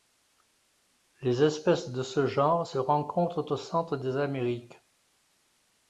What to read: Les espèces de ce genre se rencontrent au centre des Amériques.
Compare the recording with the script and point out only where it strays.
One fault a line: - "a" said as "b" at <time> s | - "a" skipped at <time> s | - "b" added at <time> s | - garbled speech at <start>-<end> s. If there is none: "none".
none